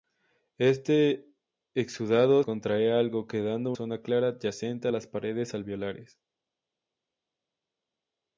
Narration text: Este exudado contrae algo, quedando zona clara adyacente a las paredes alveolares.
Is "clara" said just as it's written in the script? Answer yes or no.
yes